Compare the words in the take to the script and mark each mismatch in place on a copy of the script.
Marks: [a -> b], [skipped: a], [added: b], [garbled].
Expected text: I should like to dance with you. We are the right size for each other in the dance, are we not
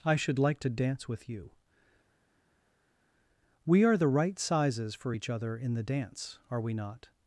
I should like to dance with you. We are the right [size -> sizes] for each other in the dance, are we not